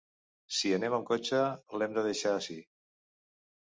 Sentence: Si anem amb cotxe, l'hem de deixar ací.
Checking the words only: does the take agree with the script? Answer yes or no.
yes